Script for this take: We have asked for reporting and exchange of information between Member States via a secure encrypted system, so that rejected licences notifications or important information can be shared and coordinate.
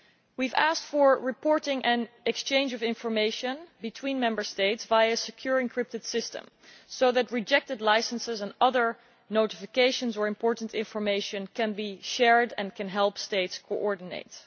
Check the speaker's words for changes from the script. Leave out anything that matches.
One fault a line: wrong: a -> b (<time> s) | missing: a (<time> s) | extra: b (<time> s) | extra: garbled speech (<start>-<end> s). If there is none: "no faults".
extra: and other (8.4 s)
extra: can help states (12.7 s)